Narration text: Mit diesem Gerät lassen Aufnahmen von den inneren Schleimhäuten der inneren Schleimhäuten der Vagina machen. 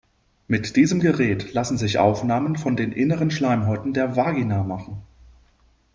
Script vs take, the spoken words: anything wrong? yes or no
yes